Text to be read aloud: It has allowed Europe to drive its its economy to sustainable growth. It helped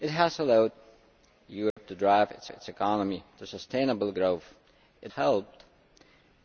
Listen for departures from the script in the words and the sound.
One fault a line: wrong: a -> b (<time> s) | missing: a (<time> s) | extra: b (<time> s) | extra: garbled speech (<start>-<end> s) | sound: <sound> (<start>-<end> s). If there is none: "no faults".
sound: dropout (1.7-1.8 s)